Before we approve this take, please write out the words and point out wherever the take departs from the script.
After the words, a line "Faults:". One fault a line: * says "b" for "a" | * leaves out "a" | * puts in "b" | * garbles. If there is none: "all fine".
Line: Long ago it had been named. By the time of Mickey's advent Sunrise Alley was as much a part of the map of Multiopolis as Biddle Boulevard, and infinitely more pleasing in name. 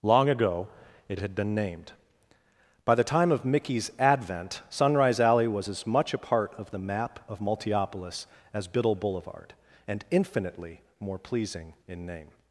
Long ago it had been named. By the time of Mickey's advent Sunrise Alley was as much a part of the map of Multiopolis as Biddle Boulevard, and infinitely more pleasing in name.
Faults:
all fine